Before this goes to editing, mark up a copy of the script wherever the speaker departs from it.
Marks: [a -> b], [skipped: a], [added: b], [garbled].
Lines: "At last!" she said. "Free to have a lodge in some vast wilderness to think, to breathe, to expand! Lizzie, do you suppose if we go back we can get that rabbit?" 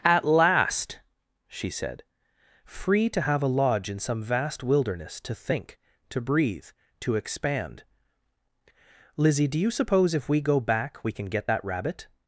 "At last!" she said. "Free to have a lodge in some vast wilderness to think, to breathe, to expand! Lizzie, do you suppose if we go back we can get that rabbit?"